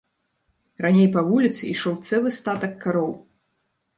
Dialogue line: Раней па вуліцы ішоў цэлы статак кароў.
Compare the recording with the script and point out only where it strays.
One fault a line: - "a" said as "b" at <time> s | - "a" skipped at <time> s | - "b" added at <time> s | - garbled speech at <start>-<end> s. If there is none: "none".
none